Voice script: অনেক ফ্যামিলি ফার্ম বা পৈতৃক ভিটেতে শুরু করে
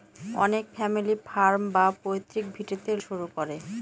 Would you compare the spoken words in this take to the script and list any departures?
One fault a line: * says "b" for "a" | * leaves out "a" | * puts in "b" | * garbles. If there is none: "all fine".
all fine